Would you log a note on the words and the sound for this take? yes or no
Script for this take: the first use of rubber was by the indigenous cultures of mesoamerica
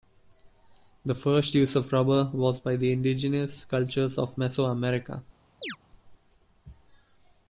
yes